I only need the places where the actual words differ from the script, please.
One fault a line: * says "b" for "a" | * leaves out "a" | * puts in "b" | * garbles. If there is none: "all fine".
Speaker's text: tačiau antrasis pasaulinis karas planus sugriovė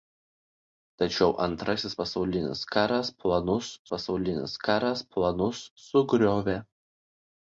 * puts in "pasaulinis karas planus"